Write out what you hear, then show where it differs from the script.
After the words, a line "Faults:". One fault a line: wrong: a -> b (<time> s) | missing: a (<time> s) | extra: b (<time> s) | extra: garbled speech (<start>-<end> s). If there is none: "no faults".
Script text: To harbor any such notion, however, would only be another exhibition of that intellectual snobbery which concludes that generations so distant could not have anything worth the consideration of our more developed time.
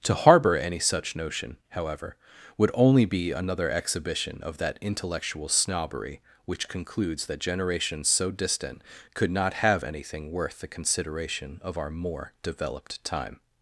To harbor any such notion, however, would only be another exhibition of that intellectual snobbery which concludes that generations so distant could not have anything worth the consideration of our more developed time.
Faults:
no faults